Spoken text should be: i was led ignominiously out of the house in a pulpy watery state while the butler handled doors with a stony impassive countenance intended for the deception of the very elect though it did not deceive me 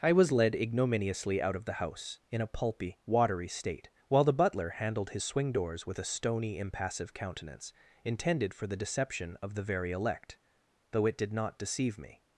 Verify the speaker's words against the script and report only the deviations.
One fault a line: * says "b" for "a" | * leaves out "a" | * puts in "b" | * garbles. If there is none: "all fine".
* puts in "his swing"